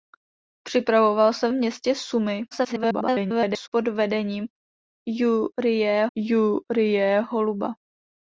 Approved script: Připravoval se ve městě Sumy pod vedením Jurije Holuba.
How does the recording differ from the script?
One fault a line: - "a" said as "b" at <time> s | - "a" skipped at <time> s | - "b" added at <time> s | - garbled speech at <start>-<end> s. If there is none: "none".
- "ve" skipped at 1.5 s
- garbled speech at 2.5-3.7 s
- "Jurije" added at 6.2 s